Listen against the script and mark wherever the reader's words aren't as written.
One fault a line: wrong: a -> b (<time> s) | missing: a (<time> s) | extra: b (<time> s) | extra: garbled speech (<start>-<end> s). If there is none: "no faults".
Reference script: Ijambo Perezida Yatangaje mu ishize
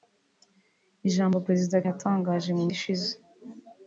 no faults